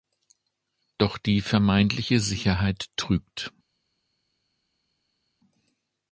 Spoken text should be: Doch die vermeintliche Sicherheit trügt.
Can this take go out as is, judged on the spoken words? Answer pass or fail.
pass